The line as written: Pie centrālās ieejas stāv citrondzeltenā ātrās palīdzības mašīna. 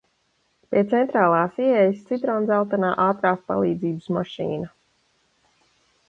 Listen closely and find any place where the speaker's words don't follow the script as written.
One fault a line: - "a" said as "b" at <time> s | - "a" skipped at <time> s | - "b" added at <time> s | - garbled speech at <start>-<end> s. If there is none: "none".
- "stāv" skipped at 2.0 s